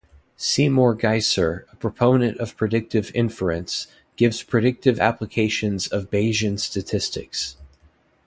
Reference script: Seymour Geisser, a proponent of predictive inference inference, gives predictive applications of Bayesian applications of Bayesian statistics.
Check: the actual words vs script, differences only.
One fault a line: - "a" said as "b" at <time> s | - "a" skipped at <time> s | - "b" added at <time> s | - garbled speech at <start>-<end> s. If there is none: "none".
- "inference" skipped at 3.9 s
- "applications of Bayesian" skipped at 6.6 s